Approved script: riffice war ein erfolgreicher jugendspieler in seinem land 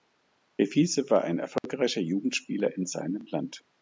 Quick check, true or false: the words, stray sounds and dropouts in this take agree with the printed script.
false